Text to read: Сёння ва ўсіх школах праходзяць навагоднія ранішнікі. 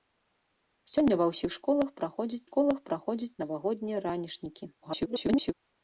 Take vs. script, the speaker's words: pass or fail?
fail